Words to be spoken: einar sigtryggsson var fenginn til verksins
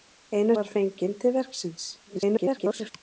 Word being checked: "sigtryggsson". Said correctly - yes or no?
no